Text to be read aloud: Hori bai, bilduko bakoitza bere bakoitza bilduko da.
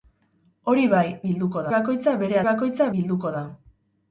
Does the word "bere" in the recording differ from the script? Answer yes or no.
no